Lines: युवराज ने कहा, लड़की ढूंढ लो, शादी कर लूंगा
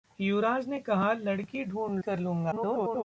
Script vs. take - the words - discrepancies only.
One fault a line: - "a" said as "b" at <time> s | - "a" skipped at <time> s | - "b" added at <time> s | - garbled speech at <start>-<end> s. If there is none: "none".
- "लो शादी" skipped at 2.0 s
- garbled speech at 2.5-3.0 s